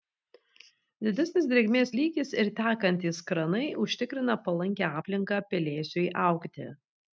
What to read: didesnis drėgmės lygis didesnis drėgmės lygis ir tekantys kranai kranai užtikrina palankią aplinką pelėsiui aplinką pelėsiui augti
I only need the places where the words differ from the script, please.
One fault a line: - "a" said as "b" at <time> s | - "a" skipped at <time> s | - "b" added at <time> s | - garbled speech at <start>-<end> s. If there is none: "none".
- "didesnis drėgmės lygis" skipped at 2.3 s
- "kranai" skipped at 3.6 s
- "aplinką pelėsiui" skipped at 6.1 s